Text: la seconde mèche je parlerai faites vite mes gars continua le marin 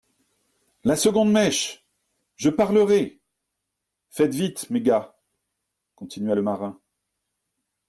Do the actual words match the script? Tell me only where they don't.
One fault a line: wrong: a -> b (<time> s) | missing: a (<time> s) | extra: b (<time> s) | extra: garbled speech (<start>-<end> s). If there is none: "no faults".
no faults